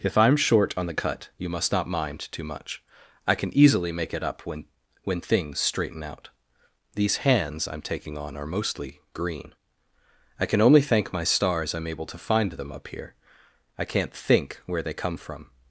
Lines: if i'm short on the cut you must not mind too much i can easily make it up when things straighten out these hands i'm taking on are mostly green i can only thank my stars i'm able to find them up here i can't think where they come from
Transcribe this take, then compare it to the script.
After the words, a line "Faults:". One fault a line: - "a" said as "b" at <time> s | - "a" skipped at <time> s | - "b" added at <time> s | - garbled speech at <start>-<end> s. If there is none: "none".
if i'm short on the cut you must not mind too much i can easily make it up when when things straighten out these hands i'm taking on are mostly green i can only thank my stars i'm able to find them up here i can't think where they come from
Faults:
- "when" added at 5.0 s